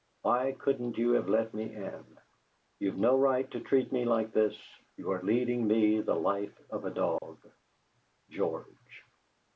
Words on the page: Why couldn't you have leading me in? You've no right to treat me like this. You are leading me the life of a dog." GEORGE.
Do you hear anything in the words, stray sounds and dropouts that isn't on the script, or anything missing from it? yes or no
yes